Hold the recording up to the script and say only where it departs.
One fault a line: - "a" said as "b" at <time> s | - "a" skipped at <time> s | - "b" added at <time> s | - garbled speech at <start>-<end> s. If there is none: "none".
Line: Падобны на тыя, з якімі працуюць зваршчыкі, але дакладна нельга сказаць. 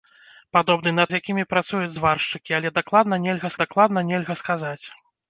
- "тыя" skipped at 1.0 s
- "дакладна нельга" added at 3.6 s